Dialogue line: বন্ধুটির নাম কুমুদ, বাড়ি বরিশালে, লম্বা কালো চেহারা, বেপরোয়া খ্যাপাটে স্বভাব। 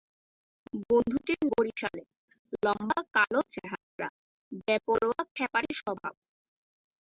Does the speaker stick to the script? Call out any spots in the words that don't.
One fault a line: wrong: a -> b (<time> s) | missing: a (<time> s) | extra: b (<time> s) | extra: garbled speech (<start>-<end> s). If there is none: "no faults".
missing: নাম কুমুদ বাড়ি (1.4 s)